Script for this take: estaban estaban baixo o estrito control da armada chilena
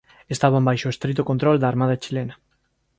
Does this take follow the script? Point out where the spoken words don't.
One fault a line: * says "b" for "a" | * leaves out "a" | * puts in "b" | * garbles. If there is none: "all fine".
* leaves out "estaban"